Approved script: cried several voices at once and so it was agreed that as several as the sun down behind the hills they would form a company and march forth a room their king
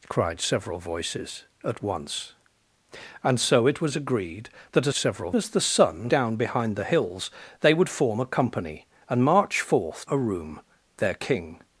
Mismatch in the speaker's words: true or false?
false